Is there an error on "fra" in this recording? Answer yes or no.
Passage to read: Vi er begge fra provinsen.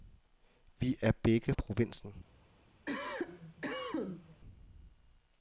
yes